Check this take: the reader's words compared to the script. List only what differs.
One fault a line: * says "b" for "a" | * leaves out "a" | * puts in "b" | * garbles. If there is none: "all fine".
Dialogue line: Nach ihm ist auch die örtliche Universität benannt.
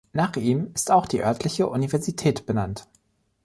all fine